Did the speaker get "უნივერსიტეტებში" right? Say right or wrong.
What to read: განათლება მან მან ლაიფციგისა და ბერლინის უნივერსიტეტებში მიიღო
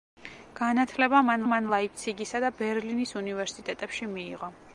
right